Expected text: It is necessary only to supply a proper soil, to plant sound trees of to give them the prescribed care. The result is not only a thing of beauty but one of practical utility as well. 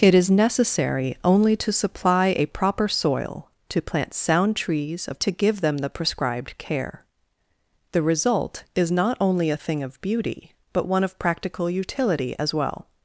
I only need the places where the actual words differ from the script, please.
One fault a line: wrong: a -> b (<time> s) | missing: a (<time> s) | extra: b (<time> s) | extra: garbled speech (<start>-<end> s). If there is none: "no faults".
no faults